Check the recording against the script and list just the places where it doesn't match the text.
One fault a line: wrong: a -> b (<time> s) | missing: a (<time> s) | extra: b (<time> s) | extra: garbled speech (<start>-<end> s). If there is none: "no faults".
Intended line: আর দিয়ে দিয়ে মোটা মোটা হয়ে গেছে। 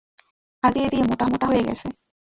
no faults